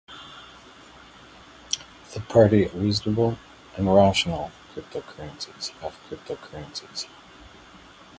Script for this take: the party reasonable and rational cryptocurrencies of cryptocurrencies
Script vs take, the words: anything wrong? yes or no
no